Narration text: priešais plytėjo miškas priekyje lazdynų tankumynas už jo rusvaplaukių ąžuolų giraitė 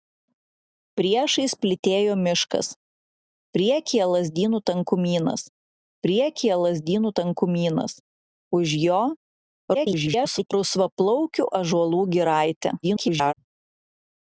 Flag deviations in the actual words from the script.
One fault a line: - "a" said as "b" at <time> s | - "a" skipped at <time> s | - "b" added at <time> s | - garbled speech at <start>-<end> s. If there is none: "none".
- "priekyje lazdynų tankumynas" added at 6.1 s
- garbled speech at 9.7-10.5 s
- garbled speech at 12.8-13.3 s